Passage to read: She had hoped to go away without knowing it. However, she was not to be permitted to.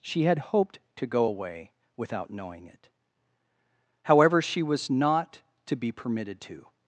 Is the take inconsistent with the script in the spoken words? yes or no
no